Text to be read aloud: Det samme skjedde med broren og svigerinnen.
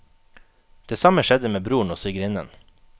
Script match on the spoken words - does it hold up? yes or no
yes